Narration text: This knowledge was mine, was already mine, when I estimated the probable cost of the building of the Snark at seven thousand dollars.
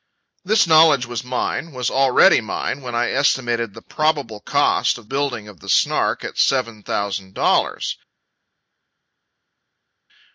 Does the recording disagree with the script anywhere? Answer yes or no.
yes